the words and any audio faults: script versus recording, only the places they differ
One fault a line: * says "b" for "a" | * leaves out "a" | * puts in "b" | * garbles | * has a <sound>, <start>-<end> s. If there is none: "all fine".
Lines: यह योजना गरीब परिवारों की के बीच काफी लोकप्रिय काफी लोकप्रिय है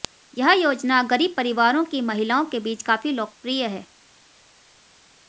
* puts in "महिलाओं"
* leaves out "काफी लोकप्रिय"